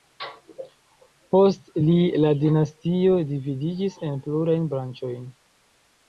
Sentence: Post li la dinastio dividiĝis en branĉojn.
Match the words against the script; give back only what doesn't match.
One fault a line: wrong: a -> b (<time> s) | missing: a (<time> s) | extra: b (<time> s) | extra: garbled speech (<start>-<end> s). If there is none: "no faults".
extra: plurajn (4.3 s)